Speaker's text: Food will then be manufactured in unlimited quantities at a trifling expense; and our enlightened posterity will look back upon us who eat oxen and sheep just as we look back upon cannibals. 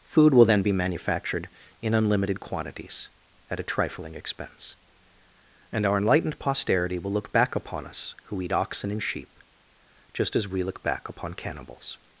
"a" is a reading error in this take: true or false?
false